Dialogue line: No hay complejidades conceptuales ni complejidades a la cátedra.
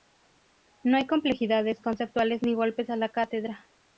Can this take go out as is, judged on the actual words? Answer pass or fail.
fail